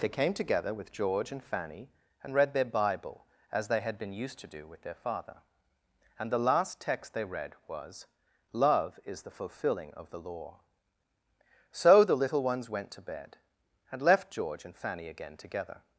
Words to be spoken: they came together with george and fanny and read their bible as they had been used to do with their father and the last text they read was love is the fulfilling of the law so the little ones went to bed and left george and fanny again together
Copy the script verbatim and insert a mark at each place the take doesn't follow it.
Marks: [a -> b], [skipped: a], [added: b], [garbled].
they came together with george and fanny and read their bible as they had been used to do with their father and the last text they read was love is the fulfilling of the law so the little ones went to bed and left george and fanny again together